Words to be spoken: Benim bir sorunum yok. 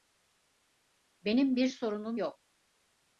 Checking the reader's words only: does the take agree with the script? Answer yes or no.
yes